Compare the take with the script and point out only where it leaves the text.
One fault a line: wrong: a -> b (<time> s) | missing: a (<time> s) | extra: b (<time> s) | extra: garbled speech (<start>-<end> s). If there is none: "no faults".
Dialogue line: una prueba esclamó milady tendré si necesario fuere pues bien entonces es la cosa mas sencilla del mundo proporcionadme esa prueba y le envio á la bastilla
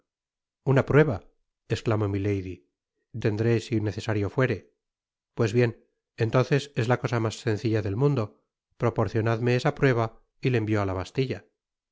no faults